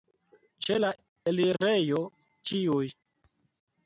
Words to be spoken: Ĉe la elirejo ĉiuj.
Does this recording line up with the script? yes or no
yes